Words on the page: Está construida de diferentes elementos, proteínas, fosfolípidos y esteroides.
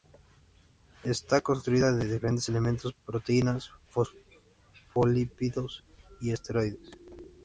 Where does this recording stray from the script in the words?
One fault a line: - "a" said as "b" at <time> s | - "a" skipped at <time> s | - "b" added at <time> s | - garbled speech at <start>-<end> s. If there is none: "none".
none